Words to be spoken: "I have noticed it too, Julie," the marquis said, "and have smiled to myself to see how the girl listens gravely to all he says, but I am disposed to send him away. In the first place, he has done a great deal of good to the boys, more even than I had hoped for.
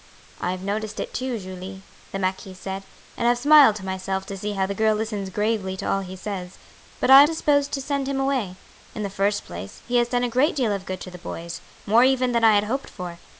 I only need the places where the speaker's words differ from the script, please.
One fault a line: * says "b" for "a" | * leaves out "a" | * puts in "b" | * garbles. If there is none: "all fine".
all fine